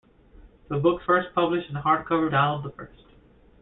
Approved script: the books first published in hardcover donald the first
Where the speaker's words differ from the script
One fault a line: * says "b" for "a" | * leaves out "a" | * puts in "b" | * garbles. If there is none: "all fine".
all fine